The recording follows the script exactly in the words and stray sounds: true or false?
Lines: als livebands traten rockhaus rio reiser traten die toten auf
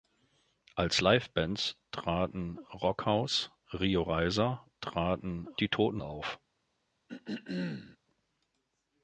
false